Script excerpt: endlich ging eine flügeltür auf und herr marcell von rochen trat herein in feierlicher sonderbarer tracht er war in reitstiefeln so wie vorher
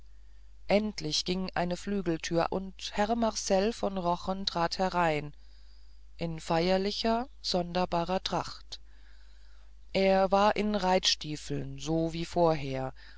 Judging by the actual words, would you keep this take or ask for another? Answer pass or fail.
fail